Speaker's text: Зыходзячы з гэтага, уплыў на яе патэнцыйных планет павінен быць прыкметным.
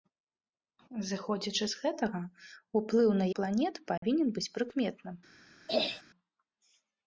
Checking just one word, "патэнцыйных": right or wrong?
wrong